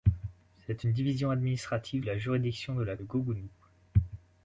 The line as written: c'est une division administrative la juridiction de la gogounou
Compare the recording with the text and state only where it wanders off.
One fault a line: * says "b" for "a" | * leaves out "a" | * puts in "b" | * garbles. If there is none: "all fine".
all fine